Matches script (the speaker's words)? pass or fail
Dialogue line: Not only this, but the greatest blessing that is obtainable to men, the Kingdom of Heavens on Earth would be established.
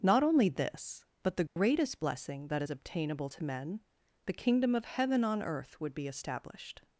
fail